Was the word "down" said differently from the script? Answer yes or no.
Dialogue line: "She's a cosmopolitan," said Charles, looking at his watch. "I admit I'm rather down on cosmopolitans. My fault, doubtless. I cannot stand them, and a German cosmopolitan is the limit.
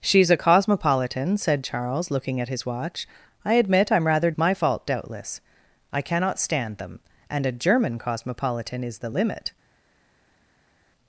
yes